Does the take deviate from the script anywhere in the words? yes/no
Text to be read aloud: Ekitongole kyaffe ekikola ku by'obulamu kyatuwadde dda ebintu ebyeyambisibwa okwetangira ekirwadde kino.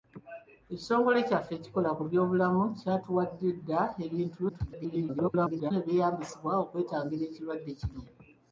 yes